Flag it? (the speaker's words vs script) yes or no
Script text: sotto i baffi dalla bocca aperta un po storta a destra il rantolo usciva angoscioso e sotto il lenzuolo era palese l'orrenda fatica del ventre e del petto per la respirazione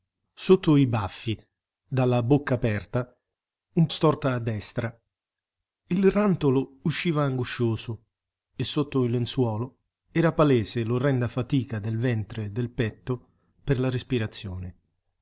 yes